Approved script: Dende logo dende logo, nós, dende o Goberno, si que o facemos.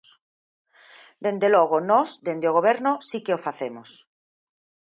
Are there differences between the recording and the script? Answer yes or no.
yes